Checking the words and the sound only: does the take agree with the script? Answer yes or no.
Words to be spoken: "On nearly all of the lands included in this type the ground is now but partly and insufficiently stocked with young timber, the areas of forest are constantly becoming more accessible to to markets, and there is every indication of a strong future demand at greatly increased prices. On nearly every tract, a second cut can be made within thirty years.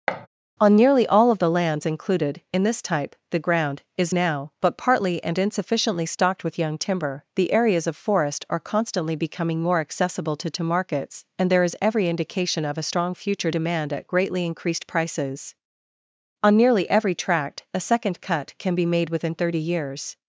no